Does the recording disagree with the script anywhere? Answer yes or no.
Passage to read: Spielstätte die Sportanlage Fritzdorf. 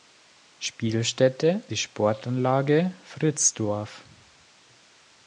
no